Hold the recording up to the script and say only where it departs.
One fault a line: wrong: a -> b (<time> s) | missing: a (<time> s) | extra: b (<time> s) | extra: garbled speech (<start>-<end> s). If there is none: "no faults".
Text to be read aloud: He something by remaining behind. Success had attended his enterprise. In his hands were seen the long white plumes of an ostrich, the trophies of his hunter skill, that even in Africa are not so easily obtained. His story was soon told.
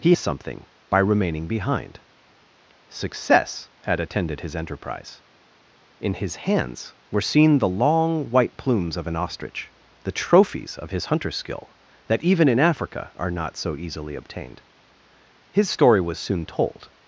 no faults